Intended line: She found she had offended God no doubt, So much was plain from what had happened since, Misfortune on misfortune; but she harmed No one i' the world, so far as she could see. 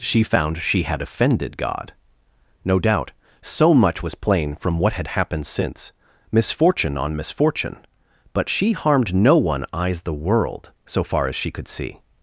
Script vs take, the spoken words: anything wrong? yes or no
yes